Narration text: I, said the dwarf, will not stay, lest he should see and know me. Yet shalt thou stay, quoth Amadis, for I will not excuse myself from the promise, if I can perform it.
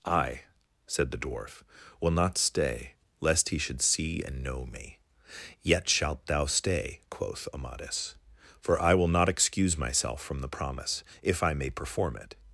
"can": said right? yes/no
no